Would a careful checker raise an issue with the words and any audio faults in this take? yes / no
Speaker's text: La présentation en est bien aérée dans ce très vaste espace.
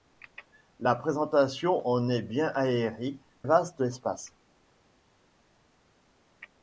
yes